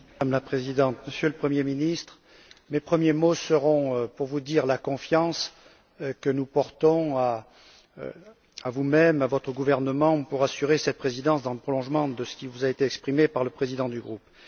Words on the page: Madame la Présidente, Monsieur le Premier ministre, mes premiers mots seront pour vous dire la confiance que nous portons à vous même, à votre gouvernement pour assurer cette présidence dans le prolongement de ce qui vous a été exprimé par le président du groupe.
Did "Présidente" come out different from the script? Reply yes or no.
no